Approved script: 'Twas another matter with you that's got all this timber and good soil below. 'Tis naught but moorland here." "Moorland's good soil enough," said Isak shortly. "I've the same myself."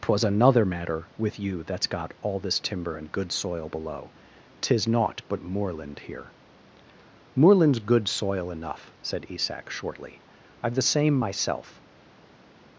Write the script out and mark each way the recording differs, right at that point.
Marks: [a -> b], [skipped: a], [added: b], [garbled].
'Twas another matter with you that's got all this timber and good soil below. 'Tis naught but moorland here." "Moorland's good soil enough," said Isak shortly. "I've the same myself."